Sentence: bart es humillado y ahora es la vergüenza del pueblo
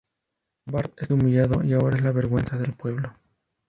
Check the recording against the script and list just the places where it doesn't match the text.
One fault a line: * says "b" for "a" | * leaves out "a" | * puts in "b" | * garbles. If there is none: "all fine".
all fine